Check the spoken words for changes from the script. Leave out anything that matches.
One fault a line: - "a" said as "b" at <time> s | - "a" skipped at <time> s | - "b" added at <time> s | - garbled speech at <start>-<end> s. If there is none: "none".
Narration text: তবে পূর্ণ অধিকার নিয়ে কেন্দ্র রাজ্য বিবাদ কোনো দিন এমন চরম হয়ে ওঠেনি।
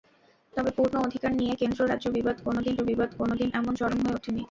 - "বিবাদ কোনো দিন" added at 2.8 s